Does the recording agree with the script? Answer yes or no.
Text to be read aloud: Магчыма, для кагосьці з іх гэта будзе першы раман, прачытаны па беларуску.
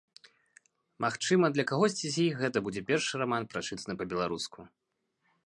yes